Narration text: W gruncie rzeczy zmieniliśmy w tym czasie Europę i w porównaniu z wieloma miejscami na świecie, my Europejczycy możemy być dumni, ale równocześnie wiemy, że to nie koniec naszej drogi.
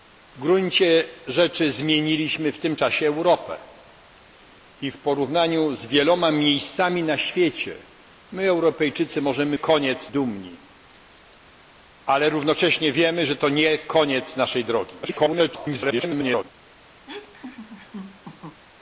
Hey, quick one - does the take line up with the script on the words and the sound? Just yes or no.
no